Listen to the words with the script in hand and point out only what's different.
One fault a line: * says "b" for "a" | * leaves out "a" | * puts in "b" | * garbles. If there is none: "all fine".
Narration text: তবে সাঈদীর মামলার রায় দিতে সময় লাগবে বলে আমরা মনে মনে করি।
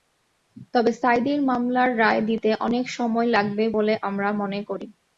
* puts in "অনেক"
* leaves out "মনে"